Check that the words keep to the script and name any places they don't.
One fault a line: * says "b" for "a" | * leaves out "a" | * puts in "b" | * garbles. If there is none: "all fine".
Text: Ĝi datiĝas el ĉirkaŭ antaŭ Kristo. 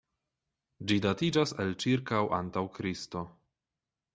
all fine